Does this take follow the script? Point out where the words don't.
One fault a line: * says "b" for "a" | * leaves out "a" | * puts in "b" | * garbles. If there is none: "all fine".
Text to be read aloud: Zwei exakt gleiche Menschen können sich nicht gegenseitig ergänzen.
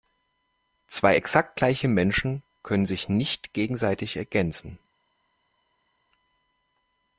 all fine